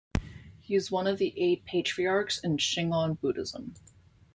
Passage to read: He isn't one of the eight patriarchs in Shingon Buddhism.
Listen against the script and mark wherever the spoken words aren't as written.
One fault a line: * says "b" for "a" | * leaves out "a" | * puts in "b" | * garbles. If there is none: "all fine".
* says "is" for "isn't"